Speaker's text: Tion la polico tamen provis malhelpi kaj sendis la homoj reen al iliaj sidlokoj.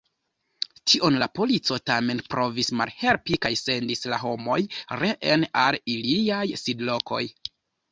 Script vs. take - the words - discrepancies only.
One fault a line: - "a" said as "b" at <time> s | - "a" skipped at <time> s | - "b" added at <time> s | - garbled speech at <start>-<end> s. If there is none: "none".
none